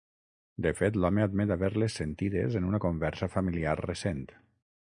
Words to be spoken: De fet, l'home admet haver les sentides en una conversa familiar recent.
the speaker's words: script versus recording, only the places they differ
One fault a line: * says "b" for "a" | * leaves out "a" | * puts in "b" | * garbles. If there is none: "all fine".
all fine